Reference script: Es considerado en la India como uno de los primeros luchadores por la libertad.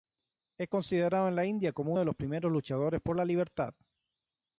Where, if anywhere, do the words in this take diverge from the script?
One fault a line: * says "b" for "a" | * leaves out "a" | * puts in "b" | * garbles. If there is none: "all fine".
* leaves out "uno"